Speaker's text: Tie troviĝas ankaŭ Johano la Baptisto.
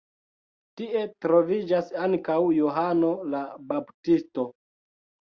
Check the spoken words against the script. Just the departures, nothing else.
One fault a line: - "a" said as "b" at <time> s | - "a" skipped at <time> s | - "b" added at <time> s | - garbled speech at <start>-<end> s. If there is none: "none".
none